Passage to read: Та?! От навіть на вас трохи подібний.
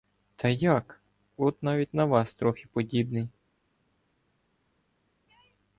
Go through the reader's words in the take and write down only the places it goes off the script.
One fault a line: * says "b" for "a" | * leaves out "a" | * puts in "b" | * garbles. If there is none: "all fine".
* puts in "як"